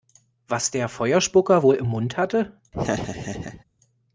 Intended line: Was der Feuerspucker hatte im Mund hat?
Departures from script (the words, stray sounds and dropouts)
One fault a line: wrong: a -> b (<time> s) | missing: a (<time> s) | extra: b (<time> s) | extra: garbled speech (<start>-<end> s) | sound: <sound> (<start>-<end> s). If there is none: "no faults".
wrong: hatte -> wohl (1.6 s)
wrong: hat -> hatte (2.2 s)
sound: laugh (2.7-3.6 s)